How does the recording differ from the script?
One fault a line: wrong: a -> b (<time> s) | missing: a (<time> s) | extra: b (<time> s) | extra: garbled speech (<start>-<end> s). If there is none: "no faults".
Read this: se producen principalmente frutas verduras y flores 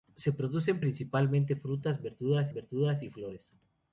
extra: verduras (2.5 s)